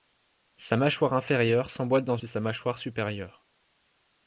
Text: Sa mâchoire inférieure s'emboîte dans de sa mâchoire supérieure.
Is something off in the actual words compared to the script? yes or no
no